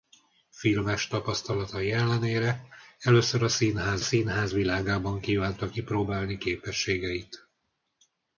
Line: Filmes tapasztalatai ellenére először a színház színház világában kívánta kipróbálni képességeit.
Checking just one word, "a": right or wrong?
right